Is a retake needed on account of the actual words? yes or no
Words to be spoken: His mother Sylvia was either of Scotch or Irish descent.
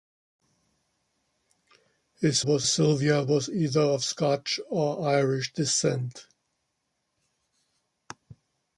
yes